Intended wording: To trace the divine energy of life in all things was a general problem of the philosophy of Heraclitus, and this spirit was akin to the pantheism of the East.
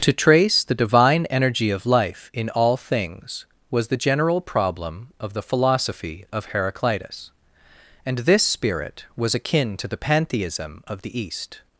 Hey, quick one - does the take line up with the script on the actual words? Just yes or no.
no